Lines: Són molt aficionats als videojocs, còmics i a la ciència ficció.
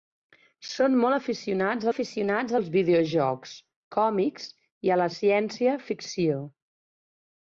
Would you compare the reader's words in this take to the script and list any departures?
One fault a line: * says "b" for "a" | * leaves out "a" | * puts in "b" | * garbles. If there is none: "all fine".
* puts in "aficionats"